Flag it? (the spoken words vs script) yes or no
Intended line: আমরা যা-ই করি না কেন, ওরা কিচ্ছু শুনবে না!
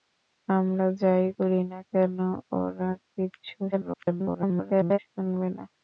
yes